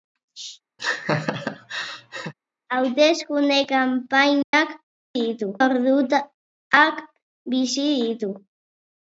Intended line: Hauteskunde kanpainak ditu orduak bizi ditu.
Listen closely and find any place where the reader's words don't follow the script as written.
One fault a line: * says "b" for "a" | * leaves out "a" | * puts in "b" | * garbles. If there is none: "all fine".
all fine